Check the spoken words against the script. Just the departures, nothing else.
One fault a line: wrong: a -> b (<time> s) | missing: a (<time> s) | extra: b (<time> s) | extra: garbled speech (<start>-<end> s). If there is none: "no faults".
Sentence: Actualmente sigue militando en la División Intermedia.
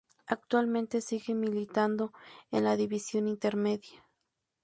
no faults